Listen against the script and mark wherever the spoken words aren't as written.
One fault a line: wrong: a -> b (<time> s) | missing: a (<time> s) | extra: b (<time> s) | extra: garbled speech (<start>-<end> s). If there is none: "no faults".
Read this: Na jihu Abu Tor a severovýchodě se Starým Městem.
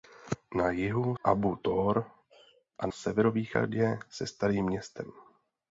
no faults